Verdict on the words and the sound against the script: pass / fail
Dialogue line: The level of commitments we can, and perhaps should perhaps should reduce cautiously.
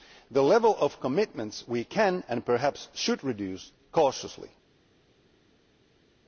fail